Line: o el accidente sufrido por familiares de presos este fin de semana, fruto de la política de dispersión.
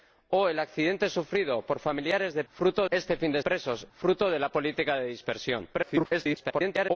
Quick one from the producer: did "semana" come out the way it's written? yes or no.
no